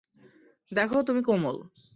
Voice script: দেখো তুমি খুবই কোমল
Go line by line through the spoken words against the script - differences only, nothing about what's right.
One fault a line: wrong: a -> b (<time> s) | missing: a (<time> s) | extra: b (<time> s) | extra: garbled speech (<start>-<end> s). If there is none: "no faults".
missing: খুবই (1.2 s)